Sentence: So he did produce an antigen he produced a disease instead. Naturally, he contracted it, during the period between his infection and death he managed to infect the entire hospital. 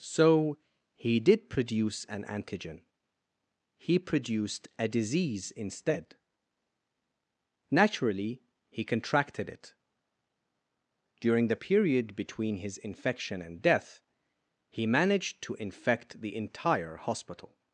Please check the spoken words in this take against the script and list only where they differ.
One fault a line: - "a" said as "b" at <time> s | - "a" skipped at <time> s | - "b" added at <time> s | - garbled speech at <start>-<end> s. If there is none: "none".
none